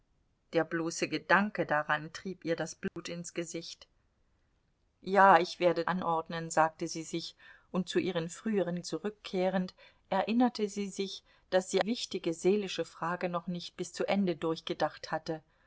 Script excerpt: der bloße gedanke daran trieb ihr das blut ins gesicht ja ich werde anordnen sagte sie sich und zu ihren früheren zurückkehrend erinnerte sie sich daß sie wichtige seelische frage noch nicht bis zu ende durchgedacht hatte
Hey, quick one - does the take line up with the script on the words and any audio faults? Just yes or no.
no